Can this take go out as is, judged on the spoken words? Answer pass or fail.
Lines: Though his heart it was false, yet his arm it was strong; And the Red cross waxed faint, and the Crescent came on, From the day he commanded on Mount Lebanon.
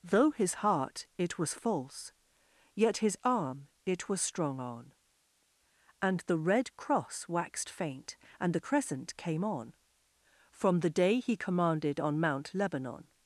fail